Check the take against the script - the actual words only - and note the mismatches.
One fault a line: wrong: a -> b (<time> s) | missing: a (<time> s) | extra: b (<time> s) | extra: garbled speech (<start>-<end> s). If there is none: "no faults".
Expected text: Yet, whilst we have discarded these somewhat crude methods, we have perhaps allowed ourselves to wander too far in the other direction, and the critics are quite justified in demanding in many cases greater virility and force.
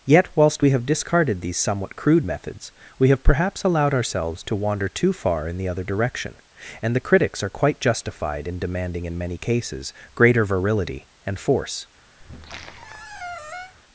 no faults